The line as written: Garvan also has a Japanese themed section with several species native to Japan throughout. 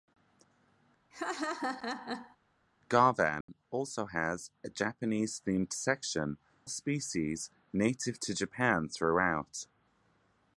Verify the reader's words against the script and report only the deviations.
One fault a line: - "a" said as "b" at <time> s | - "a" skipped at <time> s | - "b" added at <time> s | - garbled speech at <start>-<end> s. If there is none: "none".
- "with several" skipped at 6.4 s